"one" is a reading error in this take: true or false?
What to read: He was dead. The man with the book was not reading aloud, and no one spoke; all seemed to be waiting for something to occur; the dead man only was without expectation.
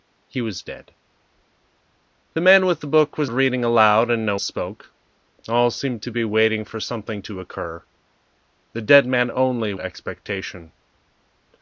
true